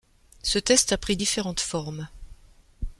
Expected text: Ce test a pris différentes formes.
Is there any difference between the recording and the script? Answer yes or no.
no